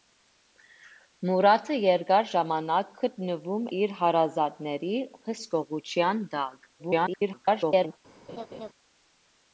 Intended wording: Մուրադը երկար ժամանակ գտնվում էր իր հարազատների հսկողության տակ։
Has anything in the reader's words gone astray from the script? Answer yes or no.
yes